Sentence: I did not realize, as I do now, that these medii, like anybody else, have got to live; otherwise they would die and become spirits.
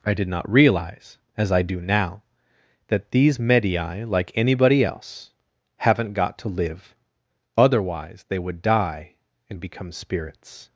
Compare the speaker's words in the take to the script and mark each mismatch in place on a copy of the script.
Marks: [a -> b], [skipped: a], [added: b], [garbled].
I did not realize, as I do now, that these medii, like anybody else, [have -> haven't] got to live; otherwise they would die and become spirits.